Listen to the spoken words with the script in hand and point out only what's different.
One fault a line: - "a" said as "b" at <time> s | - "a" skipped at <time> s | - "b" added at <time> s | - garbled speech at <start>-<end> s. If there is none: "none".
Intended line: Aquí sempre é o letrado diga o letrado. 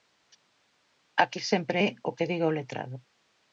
- "letrado" said as "que" at 2.2 s